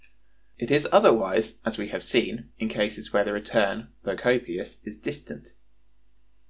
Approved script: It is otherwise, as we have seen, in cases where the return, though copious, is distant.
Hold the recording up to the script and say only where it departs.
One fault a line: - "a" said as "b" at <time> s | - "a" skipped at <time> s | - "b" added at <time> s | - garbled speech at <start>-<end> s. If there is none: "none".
none